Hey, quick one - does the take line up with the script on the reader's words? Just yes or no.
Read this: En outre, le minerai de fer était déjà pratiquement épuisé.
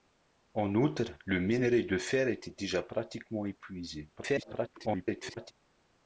no